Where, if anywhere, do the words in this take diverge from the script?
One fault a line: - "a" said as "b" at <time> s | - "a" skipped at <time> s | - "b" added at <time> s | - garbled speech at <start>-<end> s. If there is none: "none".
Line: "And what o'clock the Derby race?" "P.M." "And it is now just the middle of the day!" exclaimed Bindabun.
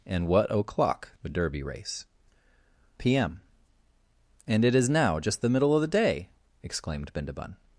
none